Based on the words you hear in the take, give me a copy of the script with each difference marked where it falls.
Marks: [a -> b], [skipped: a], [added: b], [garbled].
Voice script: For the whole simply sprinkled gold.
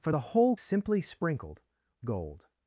For the whole simply sprinkled gold.